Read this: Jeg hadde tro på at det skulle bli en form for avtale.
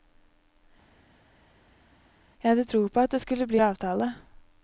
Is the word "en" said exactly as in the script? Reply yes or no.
no